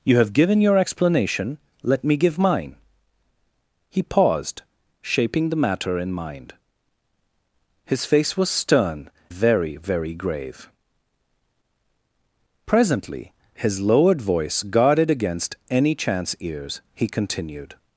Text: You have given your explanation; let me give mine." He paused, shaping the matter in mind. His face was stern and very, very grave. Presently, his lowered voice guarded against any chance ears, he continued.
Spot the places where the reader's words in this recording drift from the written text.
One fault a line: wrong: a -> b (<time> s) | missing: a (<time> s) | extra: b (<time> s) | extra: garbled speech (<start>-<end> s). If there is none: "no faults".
missing: and (9.1 s)